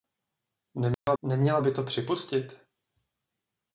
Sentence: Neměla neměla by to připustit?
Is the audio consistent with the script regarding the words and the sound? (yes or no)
no